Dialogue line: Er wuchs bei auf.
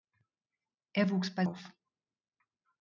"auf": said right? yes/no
yes